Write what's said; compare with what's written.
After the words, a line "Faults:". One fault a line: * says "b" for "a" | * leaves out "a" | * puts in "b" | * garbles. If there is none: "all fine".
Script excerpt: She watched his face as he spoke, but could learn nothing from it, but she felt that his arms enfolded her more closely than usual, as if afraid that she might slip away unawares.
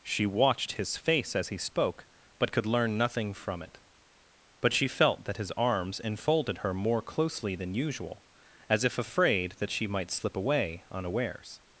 She watched his face as he spoke, but could learn nothing from it, but she felt that his arms enfolded her more closely than usual, as if afraid that she might slip away unawares.
Faults:
all fine